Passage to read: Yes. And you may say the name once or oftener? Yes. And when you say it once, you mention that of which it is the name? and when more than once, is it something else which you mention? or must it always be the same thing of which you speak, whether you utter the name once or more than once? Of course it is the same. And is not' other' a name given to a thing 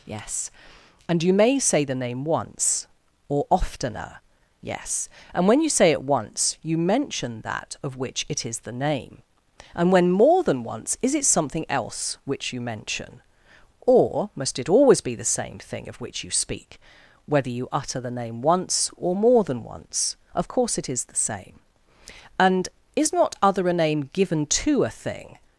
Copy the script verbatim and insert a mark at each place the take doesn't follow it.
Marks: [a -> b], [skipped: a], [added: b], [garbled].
Yes. And you may say the name once or oftener? Yes. And when you say it once, you mention that of which it is the name? and when more than once, is it something else which you mention? or must it always be the same thing of which you speak, whether you utter the name once or more than once? Of course it is the same. And is not' other' a name given to a thing